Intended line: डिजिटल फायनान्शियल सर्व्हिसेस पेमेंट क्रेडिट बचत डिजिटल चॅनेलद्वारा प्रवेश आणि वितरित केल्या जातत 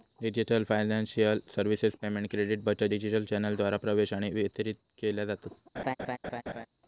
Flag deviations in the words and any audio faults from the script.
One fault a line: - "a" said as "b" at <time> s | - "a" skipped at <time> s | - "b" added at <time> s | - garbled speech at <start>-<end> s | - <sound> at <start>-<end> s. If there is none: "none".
- laugh at 5.8-6.7 s